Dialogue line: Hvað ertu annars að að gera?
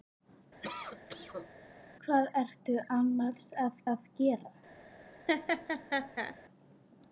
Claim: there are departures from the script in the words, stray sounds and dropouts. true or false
true